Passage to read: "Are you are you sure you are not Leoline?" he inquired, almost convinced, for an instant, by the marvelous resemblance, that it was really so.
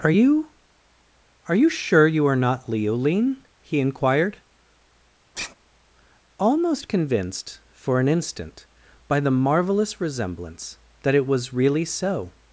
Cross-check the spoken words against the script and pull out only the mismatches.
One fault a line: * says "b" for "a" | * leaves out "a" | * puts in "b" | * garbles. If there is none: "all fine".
all fine